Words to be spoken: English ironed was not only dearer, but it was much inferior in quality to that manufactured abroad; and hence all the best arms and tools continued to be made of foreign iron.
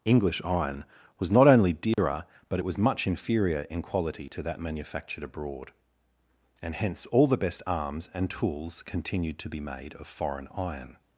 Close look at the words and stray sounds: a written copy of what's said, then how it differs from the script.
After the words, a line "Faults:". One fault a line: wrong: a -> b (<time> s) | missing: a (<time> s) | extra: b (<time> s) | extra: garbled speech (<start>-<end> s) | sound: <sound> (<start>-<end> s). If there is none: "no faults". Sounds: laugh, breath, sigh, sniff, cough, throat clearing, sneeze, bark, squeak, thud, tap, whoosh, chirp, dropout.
English iron was not only dearer, but it was much inferior in quality to that manufactured abroad; and hence all the best arms and tools continued to be made of foreign iron.
Faults:
wrong: ironed -> iron (0.4 s)
sound: dropout (1.9-2.0 s)